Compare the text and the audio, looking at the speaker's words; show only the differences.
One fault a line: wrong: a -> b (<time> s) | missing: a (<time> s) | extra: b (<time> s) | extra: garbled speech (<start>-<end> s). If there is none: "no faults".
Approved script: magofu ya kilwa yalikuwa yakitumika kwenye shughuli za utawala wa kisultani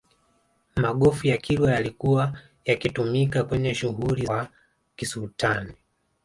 missing: za utawala (4.2 s)